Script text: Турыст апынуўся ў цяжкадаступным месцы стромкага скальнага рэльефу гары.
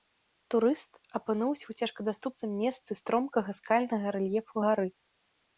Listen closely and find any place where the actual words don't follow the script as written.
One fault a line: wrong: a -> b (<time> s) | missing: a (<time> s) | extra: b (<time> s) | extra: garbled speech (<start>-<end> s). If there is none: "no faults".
no faults